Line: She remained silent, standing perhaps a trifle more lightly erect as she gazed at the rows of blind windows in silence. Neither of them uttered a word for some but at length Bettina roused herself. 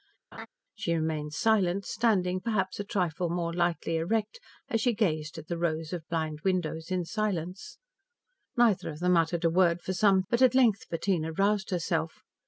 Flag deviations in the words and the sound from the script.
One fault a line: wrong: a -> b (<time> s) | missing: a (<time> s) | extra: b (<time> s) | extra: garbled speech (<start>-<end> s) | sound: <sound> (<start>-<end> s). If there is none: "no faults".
sound: laugh (0.3-0.5 s)